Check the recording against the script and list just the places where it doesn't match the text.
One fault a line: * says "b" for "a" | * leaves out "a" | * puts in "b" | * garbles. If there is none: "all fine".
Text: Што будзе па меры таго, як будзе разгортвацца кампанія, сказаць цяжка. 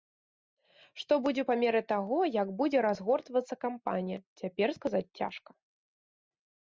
* puts in "цяпер"